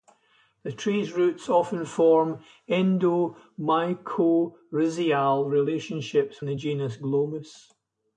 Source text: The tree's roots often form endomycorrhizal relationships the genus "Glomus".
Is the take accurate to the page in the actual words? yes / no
yes